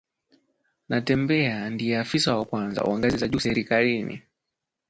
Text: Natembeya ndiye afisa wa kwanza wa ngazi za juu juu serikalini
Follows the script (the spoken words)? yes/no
no